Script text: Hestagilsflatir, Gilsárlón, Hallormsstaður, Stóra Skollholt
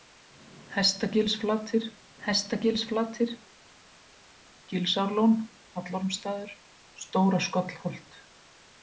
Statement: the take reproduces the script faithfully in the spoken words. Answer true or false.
false